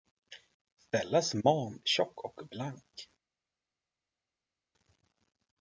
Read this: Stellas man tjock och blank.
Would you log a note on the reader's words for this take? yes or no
no